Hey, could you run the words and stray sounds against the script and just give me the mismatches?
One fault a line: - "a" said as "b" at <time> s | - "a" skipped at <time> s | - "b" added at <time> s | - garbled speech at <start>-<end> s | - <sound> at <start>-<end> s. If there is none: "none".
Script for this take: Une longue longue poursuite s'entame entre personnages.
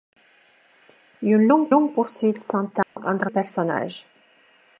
- dropout at 2.8-3.0 s